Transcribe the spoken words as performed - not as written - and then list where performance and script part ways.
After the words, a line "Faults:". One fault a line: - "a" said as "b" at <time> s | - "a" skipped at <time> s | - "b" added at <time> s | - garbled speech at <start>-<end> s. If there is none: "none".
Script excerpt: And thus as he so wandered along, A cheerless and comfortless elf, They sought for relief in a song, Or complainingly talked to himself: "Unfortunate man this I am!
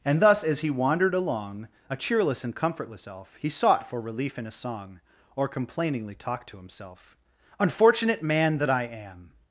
And thus as he wandered along, A cheerless and comfortless elf, He sought for relief in a song, Or complainingly talked to himself: "Unfortunate man that I am!
Faults:
- "so" skipped at 0.7 s
- "They" said as "He" at 3.4 s
- "this" said as "that" at 8.6 s